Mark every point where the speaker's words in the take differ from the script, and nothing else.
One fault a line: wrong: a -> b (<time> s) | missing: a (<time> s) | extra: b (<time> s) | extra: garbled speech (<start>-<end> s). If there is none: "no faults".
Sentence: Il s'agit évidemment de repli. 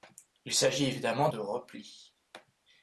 no faults